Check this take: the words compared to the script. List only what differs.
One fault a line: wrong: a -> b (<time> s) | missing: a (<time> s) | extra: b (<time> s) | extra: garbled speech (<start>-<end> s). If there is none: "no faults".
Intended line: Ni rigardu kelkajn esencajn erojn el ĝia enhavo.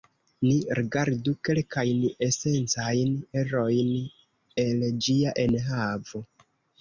no faults